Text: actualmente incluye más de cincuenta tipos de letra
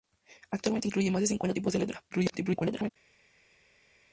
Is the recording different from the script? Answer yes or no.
yes